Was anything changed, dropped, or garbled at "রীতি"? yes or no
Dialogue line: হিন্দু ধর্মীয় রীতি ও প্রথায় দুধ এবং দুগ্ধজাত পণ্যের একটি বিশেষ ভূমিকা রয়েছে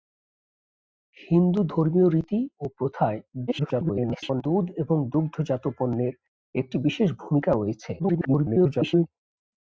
no